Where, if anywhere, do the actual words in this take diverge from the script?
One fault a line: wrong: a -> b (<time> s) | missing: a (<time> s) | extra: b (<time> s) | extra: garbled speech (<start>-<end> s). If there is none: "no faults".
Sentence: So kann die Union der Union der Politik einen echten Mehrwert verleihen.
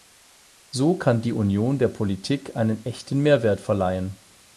missing: Union der (1.9 s)